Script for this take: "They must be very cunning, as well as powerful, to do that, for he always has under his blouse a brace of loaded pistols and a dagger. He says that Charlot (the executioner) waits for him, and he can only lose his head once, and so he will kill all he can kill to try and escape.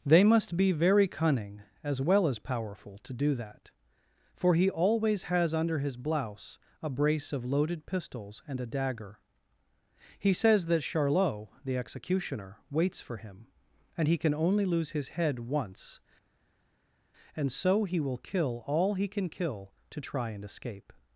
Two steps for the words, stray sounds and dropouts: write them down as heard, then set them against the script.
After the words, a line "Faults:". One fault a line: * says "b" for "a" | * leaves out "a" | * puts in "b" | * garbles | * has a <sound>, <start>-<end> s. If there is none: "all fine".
"They must be very cunning, as well as powerful, to do that, for he always has under his blouse a brace of loaded pistols and a dagger. He says that Charlot (the executioner) waits for him, and he can only lose his head once, and so he will kill all he can kill to try and escape.
Faults:
all fine